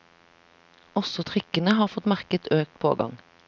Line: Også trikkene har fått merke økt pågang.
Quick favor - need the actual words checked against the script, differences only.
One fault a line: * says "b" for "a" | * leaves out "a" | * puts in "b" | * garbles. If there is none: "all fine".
all fine